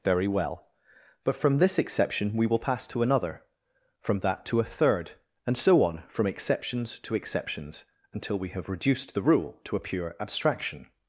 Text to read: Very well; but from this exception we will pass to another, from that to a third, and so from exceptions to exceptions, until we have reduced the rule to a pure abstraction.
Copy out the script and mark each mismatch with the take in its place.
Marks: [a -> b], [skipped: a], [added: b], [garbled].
Very well; but from this exception we will pass to another, from that to a third, and so [added: on] from exceptions to exceptions, until we have reduced the rule to a pure abstraction.